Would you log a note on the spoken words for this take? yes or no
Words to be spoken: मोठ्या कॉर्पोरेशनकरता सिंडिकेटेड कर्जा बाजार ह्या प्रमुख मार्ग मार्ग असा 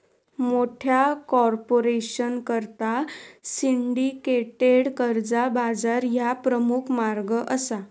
yes